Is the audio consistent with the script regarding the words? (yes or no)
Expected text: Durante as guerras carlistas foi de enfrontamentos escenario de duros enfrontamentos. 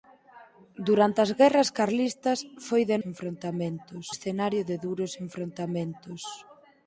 yes